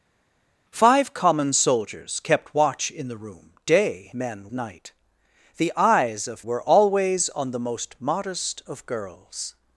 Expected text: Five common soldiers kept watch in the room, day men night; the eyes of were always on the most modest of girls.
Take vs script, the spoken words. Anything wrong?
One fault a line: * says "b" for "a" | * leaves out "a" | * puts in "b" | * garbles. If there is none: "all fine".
all fine